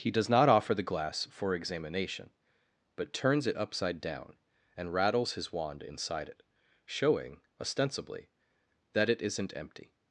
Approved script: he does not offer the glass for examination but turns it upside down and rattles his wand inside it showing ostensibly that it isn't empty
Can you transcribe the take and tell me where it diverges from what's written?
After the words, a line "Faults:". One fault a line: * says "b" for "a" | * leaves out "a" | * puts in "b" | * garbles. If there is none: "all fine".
he does not offer the glass for examination but turns it upside down and rattles his wand inside it showing ostensibly that it isn't empty
Faults:
all fine